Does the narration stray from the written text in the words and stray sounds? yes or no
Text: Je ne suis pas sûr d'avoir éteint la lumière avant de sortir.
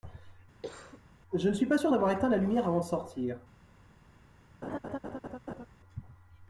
yes